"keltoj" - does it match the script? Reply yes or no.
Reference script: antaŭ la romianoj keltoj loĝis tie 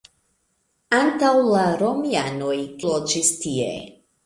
no